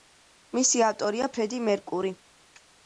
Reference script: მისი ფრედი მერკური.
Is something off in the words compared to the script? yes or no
yes